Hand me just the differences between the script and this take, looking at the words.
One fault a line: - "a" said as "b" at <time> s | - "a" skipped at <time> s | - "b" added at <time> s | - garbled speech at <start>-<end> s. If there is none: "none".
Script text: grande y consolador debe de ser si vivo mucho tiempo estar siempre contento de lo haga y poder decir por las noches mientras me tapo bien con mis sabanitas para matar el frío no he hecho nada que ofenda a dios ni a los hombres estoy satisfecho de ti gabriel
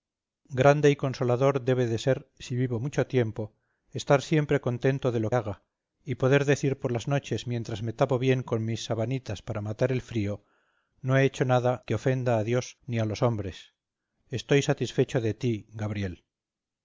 none